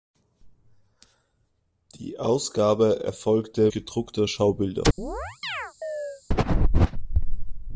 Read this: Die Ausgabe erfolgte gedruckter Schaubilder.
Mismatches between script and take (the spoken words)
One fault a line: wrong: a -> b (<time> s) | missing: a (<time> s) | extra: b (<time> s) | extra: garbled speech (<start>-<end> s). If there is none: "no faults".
no faults